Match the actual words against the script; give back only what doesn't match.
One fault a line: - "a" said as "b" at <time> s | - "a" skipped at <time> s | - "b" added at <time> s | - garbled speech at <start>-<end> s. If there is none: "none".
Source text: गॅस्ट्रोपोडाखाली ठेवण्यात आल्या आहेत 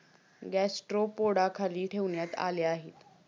none